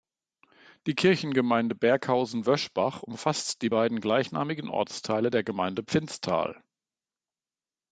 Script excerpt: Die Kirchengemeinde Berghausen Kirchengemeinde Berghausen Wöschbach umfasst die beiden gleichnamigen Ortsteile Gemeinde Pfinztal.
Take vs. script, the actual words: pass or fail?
fail